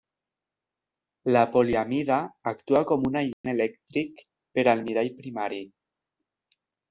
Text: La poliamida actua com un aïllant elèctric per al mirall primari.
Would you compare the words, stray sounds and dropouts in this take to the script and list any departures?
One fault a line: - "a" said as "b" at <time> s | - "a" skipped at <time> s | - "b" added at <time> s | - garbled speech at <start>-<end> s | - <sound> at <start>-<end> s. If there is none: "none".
- dropout at 3.3-3.4 s